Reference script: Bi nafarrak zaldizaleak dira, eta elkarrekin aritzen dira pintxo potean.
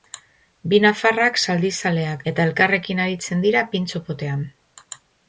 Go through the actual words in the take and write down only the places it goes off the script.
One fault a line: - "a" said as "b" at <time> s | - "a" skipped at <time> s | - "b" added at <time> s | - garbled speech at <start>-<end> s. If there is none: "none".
- "dira" skipped at 2.2 s